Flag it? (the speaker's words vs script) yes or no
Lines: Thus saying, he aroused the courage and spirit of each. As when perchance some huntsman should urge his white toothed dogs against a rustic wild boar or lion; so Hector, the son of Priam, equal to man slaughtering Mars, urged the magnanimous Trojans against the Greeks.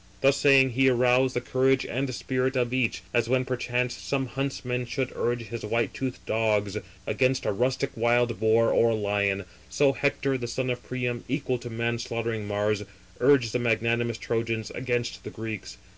no